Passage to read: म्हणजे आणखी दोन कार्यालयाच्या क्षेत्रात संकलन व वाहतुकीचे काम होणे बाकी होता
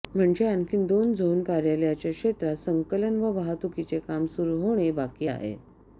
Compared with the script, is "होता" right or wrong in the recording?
wrong